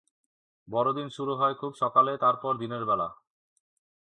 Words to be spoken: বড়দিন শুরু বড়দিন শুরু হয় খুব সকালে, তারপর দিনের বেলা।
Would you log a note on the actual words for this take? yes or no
yes